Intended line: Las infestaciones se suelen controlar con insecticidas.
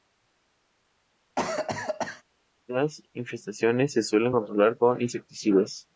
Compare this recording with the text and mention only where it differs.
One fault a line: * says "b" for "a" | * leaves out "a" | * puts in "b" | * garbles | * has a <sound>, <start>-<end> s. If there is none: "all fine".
* has a cough, 1.4-2.2 s